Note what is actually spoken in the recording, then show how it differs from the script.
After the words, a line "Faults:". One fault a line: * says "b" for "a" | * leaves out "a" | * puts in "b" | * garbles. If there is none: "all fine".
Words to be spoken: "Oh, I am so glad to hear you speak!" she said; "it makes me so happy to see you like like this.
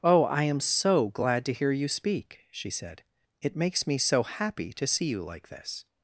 "Oh, I am so glad to hear you speak!" she said; "it makes me so happy to see you like this.
Faults:
* leaves out "like"